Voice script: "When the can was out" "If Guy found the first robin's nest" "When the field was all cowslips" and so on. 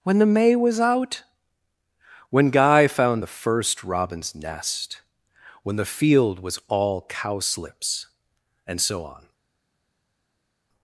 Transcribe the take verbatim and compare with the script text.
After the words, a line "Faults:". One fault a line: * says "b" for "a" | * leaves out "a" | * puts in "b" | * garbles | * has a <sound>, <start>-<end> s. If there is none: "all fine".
"When the may was out" "When Guy found the first robin's nest" "When the field was all cowslips" and so on.
Faults:
* says "may" for "can"
* says "When" for "If"